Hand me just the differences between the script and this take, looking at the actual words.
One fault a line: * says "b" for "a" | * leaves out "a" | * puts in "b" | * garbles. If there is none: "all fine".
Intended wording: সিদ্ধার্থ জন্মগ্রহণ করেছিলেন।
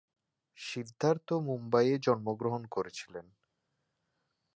* puts in "মুম্বইয়ে"